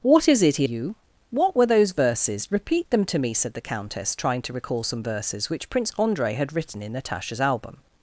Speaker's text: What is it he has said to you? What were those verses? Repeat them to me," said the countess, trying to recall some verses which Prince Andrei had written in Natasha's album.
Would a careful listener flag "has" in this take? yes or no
yes